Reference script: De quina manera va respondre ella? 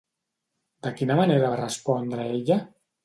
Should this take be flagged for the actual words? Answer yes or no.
no